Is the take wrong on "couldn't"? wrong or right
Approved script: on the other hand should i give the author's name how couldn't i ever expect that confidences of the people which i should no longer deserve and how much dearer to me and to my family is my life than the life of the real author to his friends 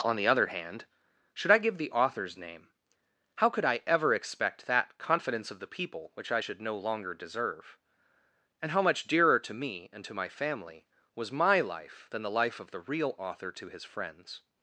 wrong